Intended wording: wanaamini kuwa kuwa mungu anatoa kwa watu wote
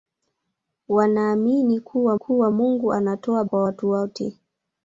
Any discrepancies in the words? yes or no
no